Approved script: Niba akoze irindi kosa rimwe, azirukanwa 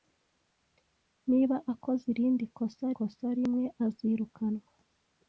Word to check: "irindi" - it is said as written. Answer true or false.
true